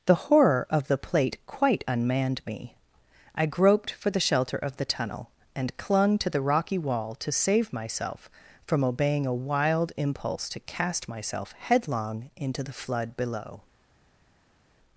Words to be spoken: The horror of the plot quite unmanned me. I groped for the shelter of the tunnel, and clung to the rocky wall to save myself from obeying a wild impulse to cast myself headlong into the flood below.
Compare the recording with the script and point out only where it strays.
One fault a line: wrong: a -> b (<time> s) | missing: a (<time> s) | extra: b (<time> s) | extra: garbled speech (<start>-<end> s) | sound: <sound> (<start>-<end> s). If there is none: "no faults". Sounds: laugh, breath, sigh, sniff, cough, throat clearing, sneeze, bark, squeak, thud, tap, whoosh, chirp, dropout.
wrong: plot -> plate (1.0 s)